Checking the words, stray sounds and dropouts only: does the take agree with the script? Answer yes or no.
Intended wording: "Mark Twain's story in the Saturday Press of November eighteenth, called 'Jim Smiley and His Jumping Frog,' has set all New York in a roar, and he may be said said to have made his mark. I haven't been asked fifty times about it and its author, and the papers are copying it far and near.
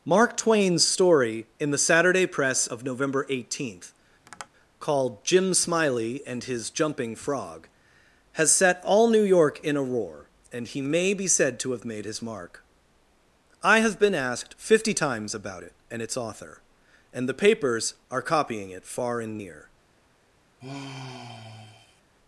no